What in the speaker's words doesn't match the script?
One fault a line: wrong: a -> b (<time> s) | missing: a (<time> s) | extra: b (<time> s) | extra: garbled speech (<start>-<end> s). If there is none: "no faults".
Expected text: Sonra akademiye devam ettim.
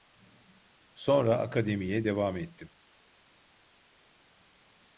no faults